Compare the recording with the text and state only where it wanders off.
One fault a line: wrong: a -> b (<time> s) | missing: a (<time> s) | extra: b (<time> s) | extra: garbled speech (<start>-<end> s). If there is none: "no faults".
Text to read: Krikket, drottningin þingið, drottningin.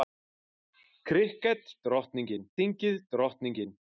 no faults